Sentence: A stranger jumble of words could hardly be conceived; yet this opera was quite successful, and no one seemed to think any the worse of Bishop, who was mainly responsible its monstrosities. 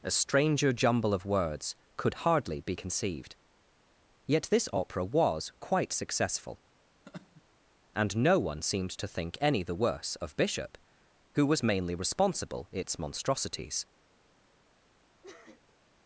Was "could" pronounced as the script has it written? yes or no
yes